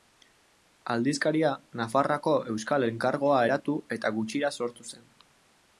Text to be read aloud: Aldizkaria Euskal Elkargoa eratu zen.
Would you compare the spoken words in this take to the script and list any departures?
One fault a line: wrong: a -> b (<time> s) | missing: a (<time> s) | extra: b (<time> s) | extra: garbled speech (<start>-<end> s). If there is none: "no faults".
extra: Nafarroako (1.8 s)
extra: eta gutxira sortu (4.0 s)